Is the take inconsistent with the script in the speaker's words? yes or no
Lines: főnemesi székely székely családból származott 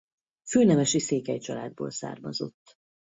yes